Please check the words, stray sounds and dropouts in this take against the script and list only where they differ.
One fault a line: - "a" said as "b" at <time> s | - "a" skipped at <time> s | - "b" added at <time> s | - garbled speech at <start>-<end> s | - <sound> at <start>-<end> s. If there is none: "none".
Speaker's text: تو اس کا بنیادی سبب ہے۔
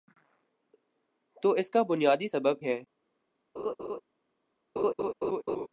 - laugh at 3.6-4.0 s
- laugh at 4.8-5.7 s